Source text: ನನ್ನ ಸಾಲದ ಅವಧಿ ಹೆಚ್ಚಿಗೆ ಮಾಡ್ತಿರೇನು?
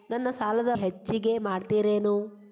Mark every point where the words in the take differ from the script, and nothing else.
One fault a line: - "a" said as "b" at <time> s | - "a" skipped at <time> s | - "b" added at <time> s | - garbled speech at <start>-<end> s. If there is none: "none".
- "ಅವಧಿ" skipped at 0.7 s